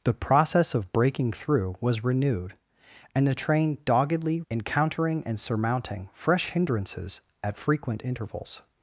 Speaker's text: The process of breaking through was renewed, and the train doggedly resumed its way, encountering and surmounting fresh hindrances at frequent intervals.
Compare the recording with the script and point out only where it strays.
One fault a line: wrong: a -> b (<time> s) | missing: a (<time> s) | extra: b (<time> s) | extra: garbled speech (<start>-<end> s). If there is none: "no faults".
missing: resumed its way (4.4 s)